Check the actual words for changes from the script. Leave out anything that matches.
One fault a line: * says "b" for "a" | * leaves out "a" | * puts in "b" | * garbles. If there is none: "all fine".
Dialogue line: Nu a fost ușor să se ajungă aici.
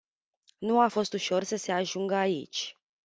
all fine